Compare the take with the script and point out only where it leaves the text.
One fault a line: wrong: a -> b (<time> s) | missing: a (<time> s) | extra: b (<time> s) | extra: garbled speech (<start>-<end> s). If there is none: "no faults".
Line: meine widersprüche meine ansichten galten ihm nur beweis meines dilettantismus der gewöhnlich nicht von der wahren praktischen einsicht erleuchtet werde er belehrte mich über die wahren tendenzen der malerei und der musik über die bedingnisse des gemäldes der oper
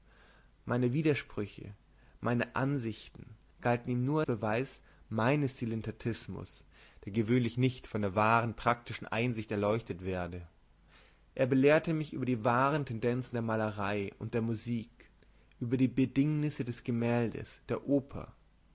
no faults